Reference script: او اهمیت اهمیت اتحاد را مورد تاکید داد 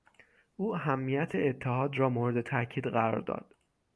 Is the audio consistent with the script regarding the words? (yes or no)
no